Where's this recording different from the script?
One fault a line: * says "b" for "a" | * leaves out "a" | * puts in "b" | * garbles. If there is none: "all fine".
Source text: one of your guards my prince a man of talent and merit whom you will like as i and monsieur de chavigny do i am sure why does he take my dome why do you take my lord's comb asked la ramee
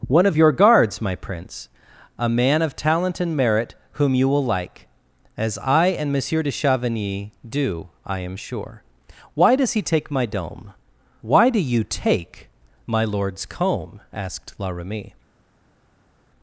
all fine